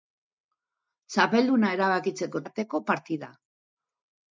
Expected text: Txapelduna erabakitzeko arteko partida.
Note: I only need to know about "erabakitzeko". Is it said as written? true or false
true